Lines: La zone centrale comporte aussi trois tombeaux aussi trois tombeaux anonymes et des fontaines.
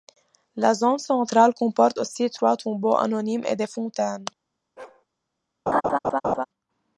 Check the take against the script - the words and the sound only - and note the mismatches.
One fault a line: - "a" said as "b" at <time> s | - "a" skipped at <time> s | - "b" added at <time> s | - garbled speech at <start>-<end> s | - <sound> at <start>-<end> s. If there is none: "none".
- "aussi trois tombeaux" skipped at 3.0 s
- bark at 4.8-5.1 s
- laugh at 5.7-6.5 s